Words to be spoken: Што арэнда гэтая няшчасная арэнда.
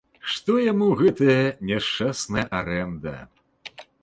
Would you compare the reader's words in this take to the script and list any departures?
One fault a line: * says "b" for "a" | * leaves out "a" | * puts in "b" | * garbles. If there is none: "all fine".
* says "яму" for "арэнда"